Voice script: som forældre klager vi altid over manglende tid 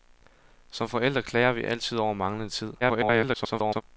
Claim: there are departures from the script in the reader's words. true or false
true